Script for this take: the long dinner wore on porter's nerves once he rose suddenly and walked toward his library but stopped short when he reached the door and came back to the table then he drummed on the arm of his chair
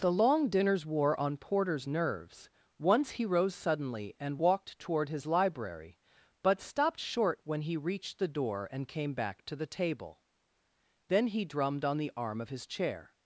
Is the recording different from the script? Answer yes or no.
yes